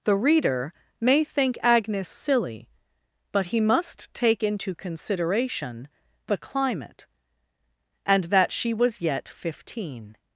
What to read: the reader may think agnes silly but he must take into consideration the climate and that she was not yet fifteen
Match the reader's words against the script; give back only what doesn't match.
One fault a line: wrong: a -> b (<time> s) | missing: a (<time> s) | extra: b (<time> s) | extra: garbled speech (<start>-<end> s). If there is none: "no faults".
missing: not (9.0 s)